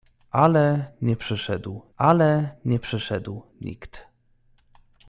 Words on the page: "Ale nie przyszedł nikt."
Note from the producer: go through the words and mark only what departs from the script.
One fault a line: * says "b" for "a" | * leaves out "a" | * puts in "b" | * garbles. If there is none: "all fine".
* puts in "ale nie przyszedł"